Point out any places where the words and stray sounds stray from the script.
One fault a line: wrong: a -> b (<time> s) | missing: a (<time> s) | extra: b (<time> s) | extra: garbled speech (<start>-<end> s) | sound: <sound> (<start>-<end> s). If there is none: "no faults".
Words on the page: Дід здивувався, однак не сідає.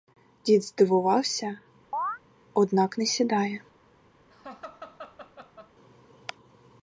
sound: chirp (1.9-2.2 s)
sound: laugh (4.3-5.7 s)